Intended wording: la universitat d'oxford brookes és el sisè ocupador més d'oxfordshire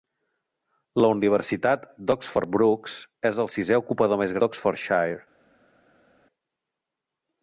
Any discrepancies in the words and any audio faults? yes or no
no